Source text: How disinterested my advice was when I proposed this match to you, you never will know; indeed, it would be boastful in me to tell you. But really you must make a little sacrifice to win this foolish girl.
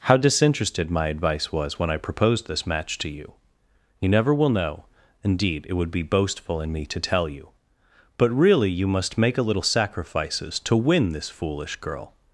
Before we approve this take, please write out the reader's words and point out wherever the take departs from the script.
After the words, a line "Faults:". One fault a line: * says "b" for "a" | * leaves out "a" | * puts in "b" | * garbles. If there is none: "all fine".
How disinterested my advice was when I proposed this match to you, you never will know; indeed, it would be boastful in me to tell you. But really you must make a little sacrifices to win this foolish girl.
Faults:
* says "sacrifices" for "sacrifice"